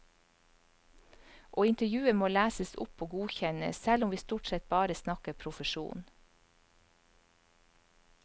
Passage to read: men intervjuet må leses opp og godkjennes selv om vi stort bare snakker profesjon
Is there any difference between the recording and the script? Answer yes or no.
yes